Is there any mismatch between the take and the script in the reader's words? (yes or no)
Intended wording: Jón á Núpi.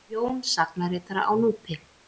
yes